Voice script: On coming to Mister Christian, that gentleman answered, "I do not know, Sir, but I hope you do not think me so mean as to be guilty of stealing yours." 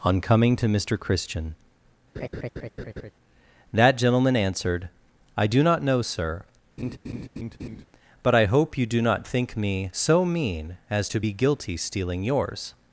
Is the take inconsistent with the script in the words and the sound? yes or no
yes